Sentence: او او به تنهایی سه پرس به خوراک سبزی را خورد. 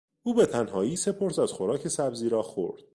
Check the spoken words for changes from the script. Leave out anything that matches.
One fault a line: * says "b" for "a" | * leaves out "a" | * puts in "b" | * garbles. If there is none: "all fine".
* leaves out "او"
* says "از" for "به"